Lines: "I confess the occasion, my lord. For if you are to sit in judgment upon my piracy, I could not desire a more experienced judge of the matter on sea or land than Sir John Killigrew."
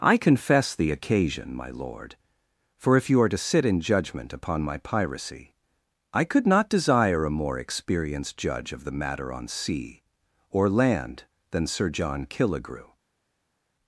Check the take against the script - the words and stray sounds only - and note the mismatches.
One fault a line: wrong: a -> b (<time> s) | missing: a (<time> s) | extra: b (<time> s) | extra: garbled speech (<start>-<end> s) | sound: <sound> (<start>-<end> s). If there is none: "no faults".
no faults